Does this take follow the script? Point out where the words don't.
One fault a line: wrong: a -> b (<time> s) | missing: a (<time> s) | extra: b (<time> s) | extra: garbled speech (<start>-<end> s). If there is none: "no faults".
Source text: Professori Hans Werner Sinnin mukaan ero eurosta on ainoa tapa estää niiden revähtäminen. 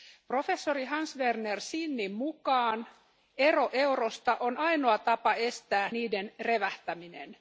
no faults